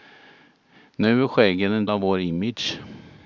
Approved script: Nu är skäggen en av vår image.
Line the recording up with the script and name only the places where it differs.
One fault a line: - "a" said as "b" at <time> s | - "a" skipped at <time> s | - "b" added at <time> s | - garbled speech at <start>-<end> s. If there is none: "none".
none